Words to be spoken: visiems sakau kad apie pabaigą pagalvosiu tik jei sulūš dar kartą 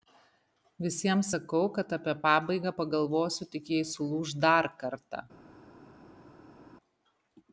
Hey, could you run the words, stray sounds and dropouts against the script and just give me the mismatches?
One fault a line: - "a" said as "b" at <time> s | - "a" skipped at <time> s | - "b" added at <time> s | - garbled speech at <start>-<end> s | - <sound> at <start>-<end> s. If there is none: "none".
none